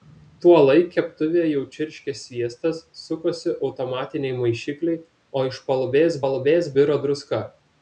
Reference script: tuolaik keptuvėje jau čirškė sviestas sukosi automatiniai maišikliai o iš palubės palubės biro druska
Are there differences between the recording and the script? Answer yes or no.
no